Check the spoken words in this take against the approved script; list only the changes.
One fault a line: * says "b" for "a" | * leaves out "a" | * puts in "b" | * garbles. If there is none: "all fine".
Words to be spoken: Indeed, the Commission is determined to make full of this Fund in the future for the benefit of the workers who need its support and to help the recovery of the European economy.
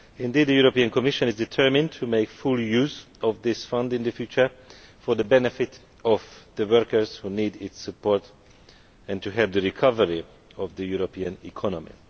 * puts in "European"
* puts in "use"